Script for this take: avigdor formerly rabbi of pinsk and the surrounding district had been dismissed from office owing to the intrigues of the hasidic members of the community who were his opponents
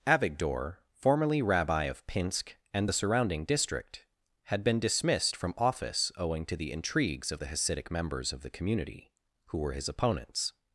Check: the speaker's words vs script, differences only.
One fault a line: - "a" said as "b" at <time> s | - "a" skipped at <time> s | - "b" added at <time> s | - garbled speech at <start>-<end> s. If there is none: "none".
none